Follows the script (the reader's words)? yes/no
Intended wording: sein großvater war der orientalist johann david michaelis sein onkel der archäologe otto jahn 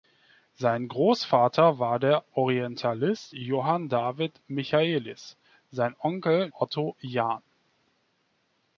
no